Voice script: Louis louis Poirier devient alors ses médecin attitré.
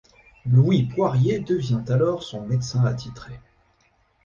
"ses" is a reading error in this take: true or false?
true